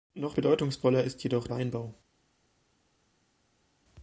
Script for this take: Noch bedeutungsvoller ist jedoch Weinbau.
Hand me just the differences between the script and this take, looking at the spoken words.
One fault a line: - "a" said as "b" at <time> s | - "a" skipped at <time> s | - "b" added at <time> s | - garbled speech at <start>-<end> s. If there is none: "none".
none